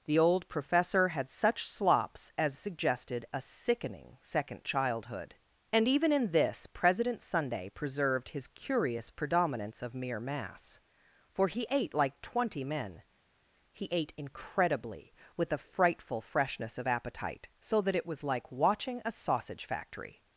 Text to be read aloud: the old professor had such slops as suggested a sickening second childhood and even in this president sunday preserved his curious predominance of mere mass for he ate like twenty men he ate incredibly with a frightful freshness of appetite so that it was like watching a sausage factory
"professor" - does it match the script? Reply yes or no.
yes